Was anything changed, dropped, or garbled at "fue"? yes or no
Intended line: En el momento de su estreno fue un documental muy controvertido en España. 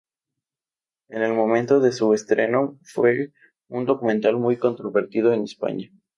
no